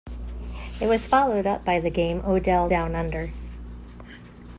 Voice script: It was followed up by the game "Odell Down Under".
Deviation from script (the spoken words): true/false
false